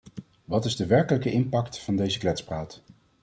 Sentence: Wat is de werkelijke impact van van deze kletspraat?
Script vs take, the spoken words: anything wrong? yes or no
yes